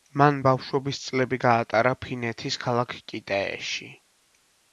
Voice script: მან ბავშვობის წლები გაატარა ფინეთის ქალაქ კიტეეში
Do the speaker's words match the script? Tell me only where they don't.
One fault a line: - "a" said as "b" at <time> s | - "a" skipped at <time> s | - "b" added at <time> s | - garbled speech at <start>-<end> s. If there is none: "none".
none